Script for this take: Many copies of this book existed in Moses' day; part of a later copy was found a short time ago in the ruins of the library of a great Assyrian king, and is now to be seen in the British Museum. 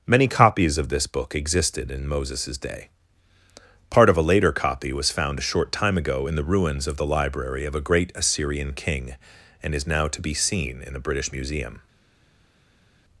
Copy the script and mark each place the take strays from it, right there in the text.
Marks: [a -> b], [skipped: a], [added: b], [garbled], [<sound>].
Many copies of this book existed in Moses' day; part of a later copy was found a short time ago in the ruins of the library of a great Assyrian king, and is now to be seen in the British Museum.